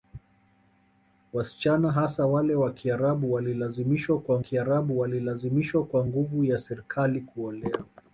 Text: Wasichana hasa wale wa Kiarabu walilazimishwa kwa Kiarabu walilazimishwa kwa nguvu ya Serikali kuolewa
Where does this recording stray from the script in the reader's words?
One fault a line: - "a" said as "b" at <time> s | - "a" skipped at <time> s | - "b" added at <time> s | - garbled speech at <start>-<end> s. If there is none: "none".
none